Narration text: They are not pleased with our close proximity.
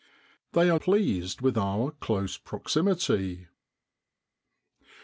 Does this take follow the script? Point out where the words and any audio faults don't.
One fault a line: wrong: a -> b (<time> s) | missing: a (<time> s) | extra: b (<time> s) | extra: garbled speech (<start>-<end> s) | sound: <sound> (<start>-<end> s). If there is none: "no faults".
missing: not (0.8 s)